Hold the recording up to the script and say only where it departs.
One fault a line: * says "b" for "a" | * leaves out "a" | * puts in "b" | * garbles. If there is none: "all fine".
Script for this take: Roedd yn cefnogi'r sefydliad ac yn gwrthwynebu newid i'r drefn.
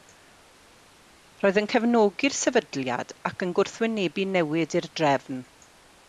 all fine